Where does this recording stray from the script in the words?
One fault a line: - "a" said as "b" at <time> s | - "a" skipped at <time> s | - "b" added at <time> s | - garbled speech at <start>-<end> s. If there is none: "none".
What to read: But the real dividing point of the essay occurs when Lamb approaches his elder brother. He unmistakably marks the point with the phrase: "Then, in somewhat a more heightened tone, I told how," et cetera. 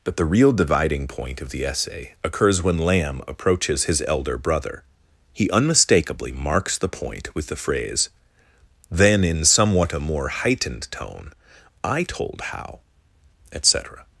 none